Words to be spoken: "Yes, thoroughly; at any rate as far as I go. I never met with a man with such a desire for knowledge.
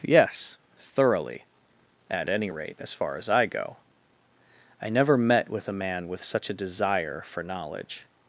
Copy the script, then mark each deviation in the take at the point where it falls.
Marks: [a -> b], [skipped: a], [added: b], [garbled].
"Yes, thoroughly; at any rate as far as I go. I never met with a man with such a desire for knowledge.